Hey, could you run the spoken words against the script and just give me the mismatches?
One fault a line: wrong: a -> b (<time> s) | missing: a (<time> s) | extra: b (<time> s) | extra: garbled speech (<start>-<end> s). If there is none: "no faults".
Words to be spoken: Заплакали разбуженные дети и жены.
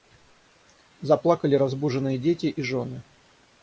no faults